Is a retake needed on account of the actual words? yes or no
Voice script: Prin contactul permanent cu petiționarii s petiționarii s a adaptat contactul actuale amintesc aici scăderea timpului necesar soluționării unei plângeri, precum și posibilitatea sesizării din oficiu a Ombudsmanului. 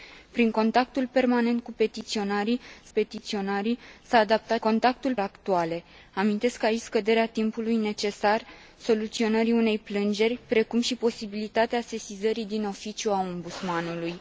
no